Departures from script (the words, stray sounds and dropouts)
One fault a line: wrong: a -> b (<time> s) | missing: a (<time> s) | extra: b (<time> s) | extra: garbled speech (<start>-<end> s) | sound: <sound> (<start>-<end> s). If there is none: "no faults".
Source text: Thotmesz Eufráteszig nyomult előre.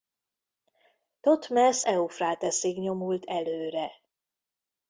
no faults